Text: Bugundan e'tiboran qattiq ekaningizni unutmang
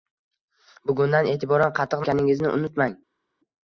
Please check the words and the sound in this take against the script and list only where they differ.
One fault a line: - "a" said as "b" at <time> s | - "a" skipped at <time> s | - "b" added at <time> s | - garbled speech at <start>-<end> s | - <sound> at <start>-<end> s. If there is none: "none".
none